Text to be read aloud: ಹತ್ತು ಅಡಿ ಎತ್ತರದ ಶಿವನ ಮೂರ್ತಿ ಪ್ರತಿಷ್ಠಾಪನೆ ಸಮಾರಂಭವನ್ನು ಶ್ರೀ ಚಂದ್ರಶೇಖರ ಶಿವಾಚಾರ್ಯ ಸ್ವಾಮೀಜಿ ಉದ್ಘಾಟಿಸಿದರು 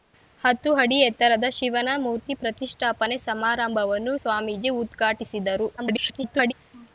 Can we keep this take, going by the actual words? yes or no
no